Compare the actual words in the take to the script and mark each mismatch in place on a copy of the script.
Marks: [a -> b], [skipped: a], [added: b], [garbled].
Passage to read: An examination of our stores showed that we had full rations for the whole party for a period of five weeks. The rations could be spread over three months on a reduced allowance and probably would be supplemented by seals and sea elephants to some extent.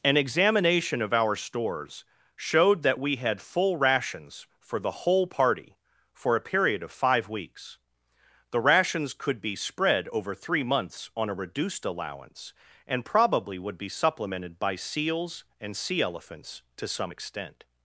An examination of our stores showed that we had full rations for the whole party for a period of five weeks. The rations could be spread over three months on a reduced allowance and probably would be supplemented by seals and sea elephants to some extent.